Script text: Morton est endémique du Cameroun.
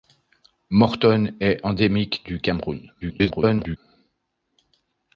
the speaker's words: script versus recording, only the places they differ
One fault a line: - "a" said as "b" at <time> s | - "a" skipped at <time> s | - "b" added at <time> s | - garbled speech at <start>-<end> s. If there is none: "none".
- garbled speech at 3.0-3.8 s